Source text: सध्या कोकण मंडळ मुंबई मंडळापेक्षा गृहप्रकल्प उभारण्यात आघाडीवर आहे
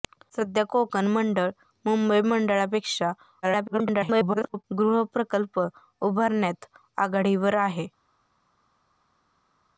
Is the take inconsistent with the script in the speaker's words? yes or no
yes